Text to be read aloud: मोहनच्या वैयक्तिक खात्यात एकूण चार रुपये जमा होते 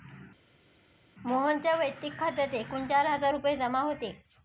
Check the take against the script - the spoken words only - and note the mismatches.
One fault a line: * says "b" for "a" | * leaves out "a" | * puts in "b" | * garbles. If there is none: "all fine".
* puts in "हजार"